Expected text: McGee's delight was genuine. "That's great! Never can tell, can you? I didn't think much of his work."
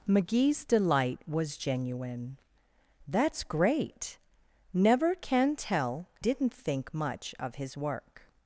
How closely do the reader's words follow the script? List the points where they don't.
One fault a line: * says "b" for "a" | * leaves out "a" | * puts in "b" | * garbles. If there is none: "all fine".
* leaves out "can you I"